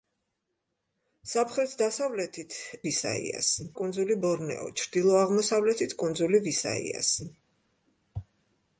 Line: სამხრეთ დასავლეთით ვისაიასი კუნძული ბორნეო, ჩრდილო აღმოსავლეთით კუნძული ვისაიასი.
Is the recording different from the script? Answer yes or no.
no